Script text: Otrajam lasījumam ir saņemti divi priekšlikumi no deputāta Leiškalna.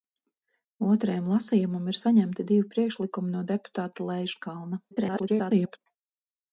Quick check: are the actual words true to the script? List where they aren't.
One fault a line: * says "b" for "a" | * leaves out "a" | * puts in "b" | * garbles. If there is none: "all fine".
* garbles